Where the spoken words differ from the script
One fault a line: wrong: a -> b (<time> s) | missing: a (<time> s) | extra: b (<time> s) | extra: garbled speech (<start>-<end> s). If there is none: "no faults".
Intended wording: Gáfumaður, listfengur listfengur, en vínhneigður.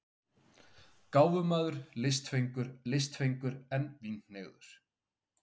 no faults